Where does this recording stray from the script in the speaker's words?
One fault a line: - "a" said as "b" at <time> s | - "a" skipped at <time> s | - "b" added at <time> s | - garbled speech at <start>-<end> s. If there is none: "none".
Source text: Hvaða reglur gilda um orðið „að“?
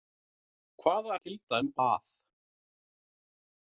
- "reglur" skipped at 1.2 s
- "orðið" skipped at 1.7 s